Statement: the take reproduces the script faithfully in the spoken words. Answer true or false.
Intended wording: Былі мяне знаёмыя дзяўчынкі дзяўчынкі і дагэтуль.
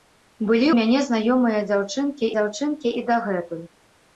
true